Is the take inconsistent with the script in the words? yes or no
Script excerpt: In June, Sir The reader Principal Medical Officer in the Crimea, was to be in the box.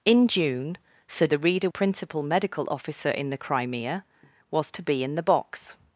no